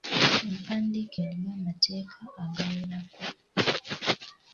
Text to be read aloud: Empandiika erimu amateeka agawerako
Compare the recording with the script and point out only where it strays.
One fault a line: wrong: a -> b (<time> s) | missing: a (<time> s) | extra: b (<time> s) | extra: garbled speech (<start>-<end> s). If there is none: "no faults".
no faults